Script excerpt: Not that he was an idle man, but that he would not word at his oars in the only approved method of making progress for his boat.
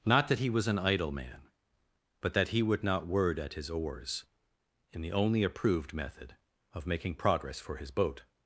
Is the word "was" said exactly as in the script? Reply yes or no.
yes